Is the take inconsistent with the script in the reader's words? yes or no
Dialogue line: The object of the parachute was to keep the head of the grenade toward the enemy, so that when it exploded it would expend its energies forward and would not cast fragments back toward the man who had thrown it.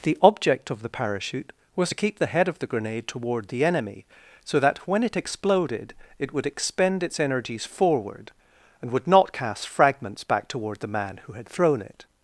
no